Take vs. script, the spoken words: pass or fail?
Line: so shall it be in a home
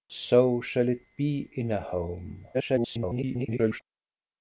fail